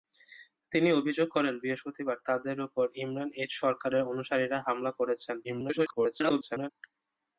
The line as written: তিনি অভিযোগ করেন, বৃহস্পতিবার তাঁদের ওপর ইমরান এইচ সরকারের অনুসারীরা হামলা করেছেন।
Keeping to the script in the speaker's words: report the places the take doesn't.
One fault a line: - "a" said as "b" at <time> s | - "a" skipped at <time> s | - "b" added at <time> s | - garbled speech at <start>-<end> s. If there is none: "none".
- garbled speech at 5.4-6.7 s